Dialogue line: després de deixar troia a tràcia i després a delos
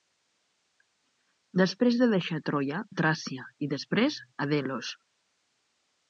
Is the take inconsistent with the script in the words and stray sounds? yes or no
no